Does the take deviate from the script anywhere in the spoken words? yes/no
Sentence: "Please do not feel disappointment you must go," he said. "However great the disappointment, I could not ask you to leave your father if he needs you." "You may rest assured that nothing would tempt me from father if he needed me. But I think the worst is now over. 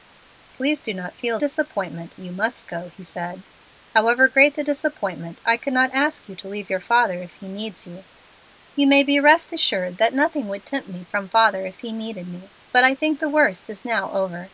no